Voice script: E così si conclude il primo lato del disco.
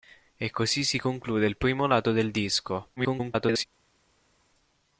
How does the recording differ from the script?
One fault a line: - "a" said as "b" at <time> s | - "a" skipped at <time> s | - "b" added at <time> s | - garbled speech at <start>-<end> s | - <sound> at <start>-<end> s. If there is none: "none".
- garbled speech at 3.0-3.6 s